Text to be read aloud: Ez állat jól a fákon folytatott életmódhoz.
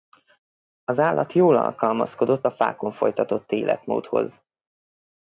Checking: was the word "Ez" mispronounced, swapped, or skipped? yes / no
yes